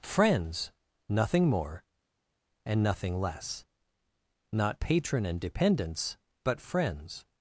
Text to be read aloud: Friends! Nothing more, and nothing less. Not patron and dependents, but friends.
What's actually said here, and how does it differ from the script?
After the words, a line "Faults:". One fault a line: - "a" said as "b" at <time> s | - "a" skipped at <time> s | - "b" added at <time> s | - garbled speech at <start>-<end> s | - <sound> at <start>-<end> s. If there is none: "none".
Friends! Nothing more, and nothing less. Not patron and dependents, but friends.
Faults:
none